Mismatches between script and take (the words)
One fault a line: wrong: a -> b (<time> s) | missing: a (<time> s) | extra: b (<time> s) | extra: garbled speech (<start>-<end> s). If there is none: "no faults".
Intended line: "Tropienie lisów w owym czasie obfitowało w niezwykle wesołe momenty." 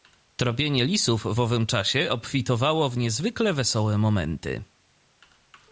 no faults